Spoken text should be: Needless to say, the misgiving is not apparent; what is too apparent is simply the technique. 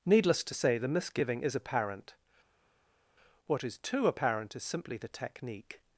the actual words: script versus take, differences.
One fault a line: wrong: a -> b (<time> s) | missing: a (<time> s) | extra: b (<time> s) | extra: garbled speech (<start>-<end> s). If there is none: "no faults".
missing: not (1.6 s)